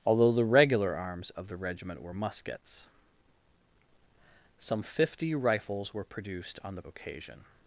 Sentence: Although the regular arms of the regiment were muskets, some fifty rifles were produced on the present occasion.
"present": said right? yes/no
no